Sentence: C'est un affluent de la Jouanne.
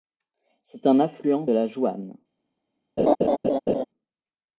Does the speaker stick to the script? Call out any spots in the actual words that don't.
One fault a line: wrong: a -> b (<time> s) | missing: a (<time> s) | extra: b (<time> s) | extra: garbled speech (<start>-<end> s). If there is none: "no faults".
missing: de (1.4 s)